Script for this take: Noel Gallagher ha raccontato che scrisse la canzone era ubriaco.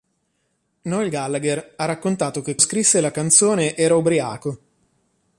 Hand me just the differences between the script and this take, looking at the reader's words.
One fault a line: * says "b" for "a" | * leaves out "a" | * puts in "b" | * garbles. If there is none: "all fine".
all fine